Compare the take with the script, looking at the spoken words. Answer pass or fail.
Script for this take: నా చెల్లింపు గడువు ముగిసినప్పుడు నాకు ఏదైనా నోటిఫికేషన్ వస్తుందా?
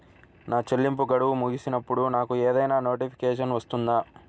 pass